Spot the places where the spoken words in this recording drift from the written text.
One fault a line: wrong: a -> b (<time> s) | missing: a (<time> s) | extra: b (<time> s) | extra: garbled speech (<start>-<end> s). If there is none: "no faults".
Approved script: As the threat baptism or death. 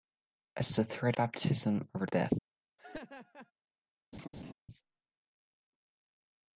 no faults